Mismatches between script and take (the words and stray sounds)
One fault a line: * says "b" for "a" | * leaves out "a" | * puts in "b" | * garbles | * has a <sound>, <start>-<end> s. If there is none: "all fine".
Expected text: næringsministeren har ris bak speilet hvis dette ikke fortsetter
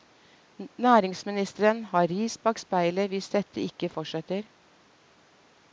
all fine